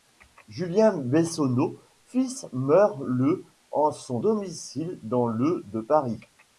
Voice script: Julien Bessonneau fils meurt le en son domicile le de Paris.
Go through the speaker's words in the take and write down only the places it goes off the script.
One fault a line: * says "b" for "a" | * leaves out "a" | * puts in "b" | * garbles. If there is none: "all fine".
* puts in "dans"